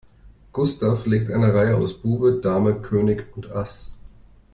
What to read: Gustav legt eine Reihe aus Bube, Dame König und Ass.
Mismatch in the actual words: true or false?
false